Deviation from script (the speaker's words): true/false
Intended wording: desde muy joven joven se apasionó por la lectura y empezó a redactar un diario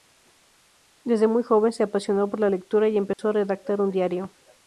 true